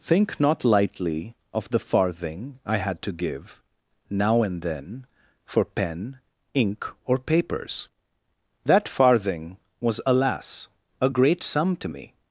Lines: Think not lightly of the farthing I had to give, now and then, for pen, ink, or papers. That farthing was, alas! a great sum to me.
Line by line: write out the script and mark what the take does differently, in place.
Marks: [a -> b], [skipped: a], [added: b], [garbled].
Think not lightly of the farthing I had to give, now and then, for pen, ink, or papers. That farthing was, alas! a great sum to me.